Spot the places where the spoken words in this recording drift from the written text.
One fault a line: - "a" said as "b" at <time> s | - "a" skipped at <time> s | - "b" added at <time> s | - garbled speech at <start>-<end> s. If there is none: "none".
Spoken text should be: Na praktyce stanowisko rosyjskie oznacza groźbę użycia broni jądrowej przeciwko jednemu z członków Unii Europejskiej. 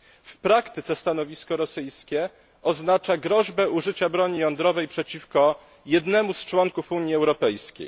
- "Na" said as "W" at 0.2 s